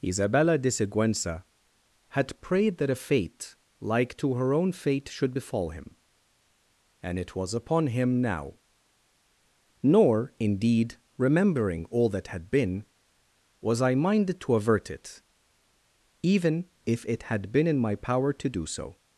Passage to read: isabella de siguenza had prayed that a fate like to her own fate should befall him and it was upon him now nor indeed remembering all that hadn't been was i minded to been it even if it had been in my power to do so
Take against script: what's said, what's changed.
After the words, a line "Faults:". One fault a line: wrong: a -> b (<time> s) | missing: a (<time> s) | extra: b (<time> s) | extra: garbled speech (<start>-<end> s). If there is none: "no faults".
isabella de siguenza had prayed that a fate like to her own fate should befall him and it was upon him now nor indeed remembering all that had been was i minded to avert it even if it had been in my power to do so
Faults:
wrong: hadn't -> had (12.3 s)
wrong: been -> avert (14.5 s)